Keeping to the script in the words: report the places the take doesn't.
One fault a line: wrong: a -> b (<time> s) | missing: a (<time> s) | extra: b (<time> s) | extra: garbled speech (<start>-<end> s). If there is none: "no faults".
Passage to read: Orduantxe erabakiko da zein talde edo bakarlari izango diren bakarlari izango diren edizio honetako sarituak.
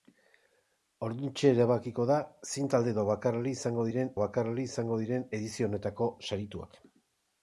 no faults